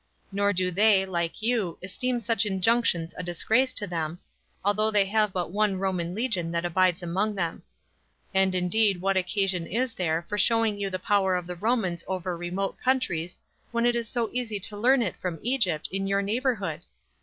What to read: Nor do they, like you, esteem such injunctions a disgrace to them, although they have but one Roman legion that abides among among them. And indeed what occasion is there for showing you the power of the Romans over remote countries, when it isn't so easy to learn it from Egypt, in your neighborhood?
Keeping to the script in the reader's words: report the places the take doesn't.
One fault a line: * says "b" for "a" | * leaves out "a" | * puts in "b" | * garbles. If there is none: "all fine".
* leaves out "among"
* says "is" for "isn't"